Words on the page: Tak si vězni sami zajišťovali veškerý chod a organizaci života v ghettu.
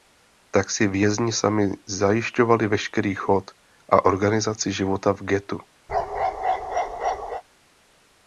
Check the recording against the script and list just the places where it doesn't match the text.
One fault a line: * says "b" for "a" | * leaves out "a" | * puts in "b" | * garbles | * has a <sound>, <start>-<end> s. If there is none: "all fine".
* has a bark, 5.9-7.4 s